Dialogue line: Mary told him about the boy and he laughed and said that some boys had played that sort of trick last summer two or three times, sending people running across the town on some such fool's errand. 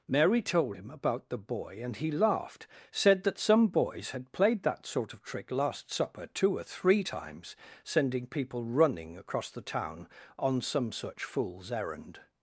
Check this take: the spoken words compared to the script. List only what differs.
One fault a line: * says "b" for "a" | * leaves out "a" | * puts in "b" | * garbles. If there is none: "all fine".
* leaves out "and"
* says "supper" for "summer"